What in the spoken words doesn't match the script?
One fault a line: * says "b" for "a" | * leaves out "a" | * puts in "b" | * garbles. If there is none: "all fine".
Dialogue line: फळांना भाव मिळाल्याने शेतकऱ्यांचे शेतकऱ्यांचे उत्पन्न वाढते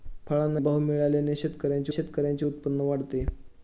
all fine